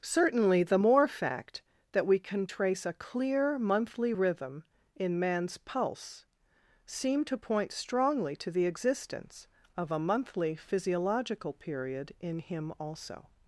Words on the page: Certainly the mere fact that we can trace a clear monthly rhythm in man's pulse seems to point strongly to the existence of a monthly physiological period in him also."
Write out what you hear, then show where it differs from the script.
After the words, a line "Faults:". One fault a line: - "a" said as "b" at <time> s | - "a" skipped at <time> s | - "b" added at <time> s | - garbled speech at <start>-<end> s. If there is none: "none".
Certainly the more fact that we can trace a clear monthly rhythm in man's pulse seem to point strongly to the existence of a monthly physiological period in him also."
Faults:
- "mere" said as "more" at 0.8 s
- "seems" said as "seem" at 6.9 s